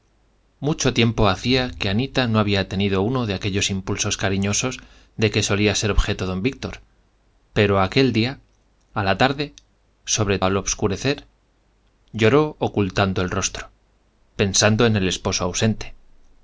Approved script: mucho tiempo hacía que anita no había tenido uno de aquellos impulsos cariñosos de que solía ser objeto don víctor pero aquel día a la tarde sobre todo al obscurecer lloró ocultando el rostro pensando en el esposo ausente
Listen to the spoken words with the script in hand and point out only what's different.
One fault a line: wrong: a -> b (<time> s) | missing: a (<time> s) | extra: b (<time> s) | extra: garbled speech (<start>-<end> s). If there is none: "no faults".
missing: todo (10.4 s)